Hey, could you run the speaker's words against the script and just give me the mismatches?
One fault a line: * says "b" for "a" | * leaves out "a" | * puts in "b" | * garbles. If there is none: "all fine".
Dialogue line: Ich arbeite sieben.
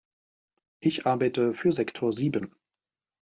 * puts in "für Sektor"